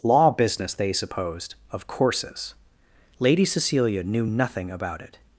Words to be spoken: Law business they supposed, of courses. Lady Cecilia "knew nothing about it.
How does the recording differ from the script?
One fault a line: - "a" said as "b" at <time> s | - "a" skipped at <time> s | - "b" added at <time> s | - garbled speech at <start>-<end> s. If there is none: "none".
none